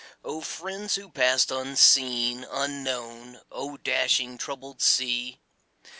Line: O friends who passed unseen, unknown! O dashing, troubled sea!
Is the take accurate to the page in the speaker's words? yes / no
yes